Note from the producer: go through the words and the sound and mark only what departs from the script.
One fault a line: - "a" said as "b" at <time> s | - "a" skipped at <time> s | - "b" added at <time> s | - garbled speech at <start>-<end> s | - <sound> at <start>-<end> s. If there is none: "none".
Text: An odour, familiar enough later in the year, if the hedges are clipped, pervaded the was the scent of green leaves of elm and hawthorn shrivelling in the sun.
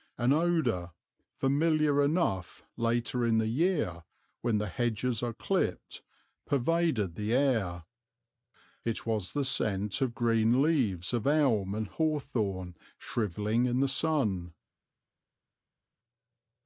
- "if" said as "when" at 4.4 s
- "air It" added at 7.3 s